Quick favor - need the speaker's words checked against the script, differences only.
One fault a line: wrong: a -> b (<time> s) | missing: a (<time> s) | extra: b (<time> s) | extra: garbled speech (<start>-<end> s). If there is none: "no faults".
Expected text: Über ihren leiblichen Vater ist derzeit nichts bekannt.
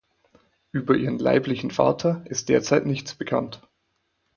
no faults